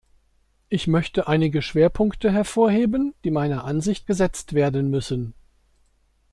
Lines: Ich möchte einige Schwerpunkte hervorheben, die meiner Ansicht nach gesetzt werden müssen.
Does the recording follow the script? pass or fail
fail